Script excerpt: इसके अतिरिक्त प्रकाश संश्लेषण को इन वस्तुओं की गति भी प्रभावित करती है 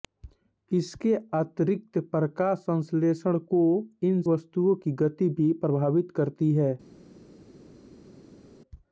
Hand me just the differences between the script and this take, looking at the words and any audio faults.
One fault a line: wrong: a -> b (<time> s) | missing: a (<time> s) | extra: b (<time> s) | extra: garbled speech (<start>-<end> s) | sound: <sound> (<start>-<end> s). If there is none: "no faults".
no faults